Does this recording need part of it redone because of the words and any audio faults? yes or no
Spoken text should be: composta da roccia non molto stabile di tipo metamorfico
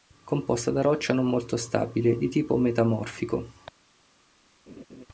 yes